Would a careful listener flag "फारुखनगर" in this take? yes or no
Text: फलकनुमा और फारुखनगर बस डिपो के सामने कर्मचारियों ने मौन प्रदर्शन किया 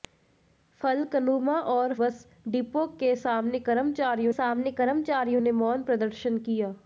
yes